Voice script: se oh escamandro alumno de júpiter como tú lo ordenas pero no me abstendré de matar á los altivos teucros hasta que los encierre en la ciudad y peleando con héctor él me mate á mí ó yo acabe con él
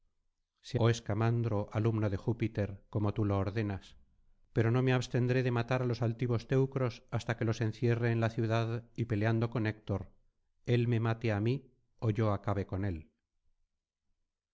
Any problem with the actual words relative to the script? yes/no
no